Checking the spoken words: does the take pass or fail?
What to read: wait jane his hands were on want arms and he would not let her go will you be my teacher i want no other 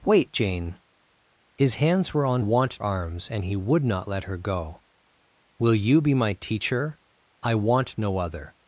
pass